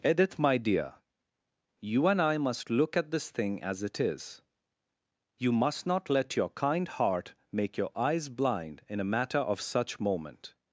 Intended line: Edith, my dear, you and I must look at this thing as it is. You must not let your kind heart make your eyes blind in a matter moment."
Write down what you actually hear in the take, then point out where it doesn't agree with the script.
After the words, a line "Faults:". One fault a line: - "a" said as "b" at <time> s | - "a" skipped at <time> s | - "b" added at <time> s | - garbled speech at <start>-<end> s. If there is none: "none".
Edith, my dear, you and I must look at this thing as it is. You must not let your kind heart make your eyes blind in a matter of such moment."
Faults:
- "of such" added at 9.4 s